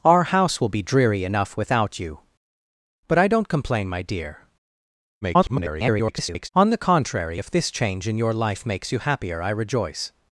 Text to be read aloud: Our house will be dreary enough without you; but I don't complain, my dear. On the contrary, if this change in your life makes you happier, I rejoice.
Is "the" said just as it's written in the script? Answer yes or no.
yes